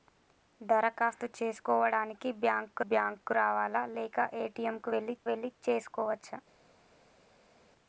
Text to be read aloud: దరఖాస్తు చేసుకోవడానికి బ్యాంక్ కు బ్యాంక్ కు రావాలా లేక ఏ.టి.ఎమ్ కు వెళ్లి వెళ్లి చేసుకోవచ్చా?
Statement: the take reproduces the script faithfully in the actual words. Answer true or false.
true